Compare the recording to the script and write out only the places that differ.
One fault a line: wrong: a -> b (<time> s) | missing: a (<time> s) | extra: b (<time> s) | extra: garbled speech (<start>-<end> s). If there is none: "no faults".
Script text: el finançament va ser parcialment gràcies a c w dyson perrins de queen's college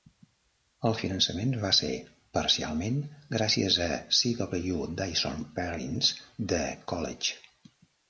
missing: queen's (6.7 s)